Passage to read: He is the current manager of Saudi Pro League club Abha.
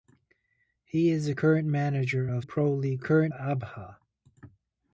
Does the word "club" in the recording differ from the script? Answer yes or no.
yes